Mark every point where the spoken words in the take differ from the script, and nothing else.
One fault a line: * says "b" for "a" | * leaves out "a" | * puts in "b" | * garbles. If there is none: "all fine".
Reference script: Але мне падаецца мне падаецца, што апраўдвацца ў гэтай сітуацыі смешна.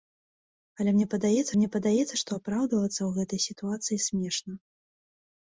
all fine